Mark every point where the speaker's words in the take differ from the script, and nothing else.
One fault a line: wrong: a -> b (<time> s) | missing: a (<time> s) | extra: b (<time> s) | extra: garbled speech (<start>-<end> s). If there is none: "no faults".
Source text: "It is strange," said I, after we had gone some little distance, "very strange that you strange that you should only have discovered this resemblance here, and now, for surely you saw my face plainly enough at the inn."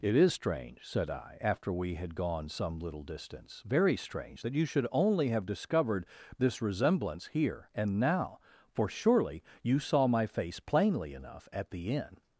missing: strange that you (4.7 s)